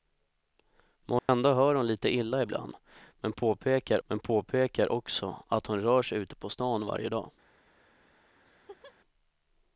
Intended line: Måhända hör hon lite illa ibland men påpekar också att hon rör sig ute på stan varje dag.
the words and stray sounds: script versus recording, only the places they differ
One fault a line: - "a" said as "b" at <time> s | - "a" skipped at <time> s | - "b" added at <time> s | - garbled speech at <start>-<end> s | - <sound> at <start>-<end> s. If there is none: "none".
- dropout at 1.2-1.3 s
- "men påpekar" added at 4.1 s
- laugh at 8.4-9.0 s